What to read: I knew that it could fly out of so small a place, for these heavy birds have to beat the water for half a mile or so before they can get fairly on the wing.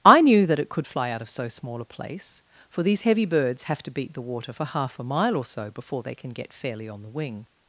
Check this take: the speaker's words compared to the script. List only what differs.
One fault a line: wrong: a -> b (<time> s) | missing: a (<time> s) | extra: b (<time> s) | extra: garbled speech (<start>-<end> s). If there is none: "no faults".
no faults